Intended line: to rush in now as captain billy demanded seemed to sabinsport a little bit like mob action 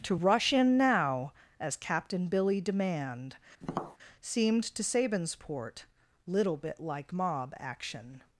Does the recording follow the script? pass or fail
fail